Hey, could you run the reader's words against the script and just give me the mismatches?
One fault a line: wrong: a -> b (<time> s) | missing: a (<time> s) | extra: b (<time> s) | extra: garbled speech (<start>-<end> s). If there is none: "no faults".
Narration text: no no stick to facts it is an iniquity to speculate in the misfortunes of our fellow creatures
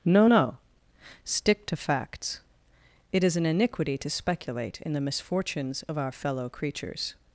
no faults